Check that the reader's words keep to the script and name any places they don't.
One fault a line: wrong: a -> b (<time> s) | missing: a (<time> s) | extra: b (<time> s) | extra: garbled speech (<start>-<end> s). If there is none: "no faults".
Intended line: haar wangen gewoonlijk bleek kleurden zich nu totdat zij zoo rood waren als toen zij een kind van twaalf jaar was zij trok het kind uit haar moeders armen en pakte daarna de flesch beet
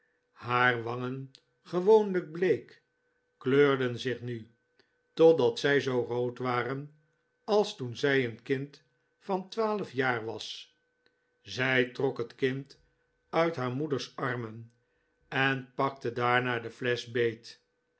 no faults